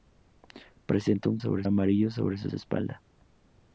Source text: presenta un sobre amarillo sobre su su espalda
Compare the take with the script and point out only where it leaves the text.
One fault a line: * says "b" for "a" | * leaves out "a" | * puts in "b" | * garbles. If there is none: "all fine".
all fine